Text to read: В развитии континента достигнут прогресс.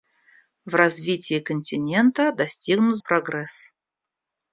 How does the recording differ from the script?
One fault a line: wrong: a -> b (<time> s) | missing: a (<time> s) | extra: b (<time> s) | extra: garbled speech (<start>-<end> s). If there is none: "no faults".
no faults